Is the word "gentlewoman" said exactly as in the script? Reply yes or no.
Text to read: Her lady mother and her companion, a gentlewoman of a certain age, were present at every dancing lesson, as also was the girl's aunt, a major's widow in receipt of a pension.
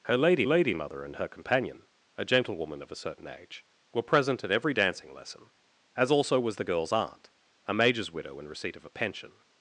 yes